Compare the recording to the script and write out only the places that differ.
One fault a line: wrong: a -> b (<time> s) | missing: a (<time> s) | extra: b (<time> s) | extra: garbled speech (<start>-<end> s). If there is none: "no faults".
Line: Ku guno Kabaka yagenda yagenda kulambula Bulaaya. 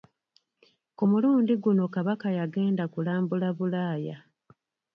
extra: mulundi (1.1 s)
missing: yagenda (2.8 s)